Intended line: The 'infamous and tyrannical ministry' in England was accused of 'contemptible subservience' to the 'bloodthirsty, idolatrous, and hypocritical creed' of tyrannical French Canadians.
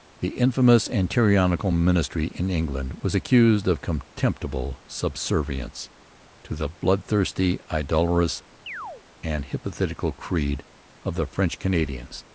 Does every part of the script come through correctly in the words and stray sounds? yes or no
no